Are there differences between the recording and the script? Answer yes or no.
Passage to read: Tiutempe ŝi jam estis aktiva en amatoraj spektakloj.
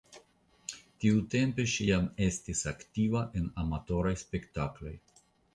no